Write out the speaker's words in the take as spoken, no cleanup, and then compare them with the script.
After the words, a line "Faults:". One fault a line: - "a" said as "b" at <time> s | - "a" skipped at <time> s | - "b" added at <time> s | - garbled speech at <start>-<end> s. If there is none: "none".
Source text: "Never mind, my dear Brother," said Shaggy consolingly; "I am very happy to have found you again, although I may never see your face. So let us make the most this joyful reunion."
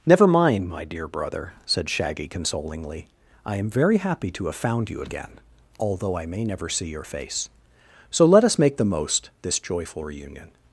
"Never mind, my dear Brother," said Shaggy consolingly; "I am very happy to have found you again, although I may never see your face. So let us make the most this joyful reunion."
Faults:
none